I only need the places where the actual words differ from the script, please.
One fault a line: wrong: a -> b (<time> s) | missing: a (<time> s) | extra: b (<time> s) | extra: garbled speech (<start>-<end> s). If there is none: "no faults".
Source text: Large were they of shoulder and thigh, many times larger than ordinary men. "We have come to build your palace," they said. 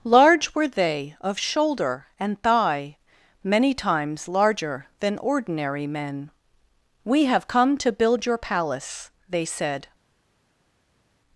no faults